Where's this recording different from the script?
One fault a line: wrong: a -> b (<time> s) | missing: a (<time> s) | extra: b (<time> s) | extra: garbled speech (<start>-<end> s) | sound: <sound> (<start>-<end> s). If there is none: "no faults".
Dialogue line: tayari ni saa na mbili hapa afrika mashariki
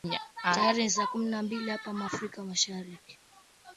extra: kumi (1.1 s)